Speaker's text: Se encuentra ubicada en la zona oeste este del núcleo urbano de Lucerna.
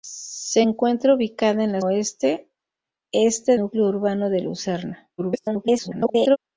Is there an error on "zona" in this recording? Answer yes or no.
yes